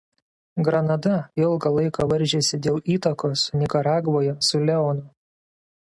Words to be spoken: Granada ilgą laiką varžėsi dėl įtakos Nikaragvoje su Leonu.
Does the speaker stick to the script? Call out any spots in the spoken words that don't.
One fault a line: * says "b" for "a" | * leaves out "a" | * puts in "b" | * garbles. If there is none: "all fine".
all fine